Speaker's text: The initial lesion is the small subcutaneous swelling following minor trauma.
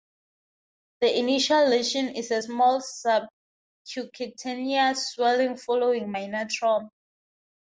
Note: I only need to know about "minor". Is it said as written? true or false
true